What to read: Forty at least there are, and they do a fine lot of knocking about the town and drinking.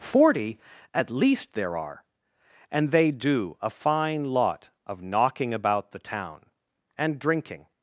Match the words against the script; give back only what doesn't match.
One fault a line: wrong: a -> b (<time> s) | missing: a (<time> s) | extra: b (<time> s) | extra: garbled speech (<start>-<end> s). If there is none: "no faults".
no faults